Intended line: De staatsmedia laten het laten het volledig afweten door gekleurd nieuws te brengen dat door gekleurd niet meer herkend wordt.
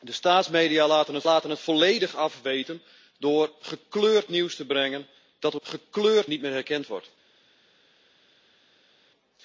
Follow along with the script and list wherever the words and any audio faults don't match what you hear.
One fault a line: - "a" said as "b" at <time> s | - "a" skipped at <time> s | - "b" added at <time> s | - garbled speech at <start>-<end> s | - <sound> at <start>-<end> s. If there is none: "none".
none